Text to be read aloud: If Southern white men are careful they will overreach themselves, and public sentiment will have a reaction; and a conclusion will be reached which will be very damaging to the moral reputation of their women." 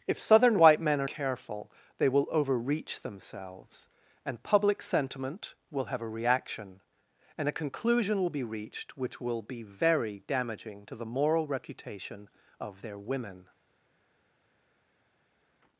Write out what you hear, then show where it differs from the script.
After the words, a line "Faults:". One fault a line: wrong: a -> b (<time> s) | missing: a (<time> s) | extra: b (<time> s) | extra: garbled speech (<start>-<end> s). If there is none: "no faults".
If Southern white men are careful they will overreach themselves, and public sentiment will have a reaction; and a conclusion will be reached which will be very damaging to the moral reputation of their women."
Faults:
no faults